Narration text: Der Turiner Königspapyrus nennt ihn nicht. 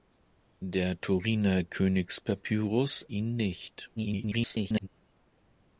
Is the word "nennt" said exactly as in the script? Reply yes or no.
no